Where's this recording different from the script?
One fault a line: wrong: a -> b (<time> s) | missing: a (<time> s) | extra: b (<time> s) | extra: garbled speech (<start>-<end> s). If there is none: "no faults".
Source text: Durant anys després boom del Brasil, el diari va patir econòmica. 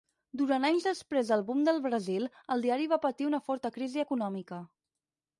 extra: del (1.3 s)
extra: una forta crisi (3.3 s)